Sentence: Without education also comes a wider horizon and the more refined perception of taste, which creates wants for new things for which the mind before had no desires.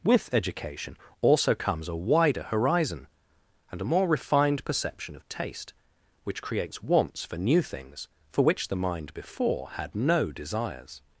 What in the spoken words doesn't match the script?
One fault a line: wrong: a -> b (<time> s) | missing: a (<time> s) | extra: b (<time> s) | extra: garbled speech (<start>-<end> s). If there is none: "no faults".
wrong: Without -> With (0.0 s)
wrong: the -> a (3.8 s)